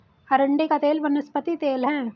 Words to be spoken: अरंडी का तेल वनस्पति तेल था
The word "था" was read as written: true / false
false